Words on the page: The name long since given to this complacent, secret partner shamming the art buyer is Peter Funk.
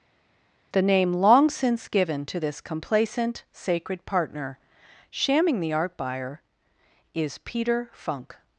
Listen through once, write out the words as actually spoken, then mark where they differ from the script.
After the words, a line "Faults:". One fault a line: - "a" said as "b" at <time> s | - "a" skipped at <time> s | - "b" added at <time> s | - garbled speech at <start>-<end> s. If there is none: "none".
The name long since given to this complacent, sacred partner shamming the art buyer is Peter Funk.
Faults:
- "secret" said as "sacred" at 3.5 s